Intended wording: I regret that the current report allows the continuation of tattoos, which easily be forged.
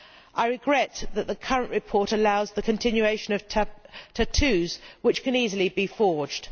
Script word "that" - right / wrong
right